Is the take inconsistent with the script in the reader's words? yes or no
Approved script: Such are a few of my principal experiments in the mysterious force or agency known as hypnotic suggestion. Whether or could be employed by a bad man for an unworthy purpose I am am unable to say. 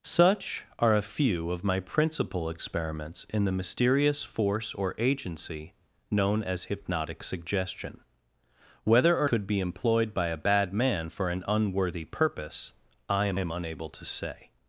no